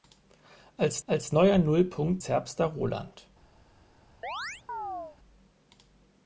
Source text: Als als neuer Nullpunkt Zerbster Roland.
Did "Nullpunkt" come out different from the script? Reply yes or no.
no